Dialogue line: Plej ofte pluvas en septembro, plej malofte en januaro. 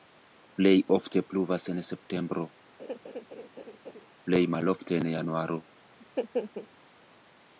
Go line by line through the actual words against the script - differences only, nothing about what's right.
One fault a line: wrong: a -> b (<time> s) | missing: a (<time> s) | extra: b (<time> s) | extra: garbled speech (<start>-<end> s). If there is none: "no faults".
no faults